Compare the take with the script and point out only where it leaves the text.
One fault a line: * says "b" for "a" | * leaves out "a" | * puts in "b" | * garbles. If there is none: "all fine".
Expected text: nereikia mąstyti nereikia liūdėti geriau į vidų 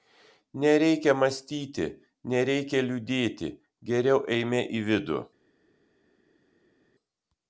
* puts in "eime"